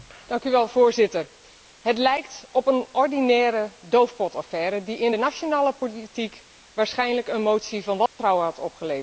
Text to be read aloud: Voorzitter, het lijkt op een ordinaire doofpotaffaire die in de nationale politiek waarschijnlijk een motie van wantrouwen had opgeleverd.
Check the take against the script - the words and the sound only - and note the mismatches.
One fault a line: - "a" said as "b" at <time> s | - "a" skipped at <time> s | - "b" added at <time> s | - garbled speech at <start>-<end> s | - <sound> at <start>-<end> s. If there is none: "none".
- dropout at 8.1-8.2 s